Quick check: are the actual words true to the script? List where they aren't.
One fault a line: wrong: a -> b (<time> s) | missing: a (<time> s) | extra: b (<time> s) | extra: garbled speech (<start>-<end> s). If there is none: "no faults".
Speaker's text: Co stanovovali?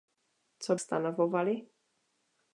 no faults